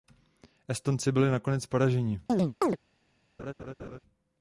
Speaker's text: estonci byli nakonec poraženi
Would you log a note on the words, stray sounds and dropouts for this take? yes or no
yes